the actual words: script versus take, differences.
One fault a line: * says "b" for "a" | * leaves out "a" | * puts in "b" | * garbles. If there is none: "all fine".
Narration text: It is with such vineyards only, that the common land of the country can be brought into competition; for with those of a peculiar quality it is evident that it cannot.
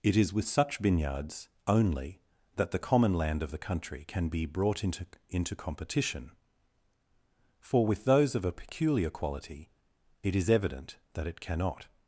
* puts in "into"